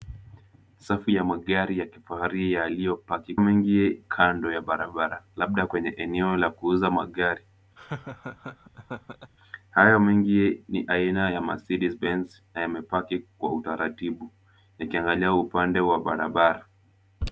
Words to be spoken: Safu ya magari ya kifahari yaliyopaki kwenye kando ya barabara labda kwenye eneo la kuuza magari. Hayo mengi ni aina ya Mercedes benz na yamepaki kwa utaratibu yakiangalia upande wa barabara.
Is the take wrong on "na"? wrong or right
right